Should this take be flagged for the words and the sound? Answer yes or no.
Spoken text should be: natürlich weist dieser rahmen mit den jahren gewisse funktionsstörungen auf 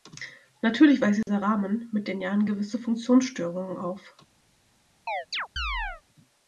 yes